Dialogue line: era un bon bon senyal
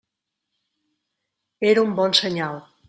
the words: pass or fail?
fail